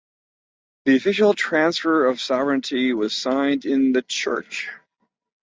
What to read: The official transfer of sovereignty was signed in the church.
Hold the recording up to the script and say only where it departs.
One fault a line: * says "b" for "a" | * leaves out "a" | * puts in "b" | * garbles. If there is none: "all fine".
all fine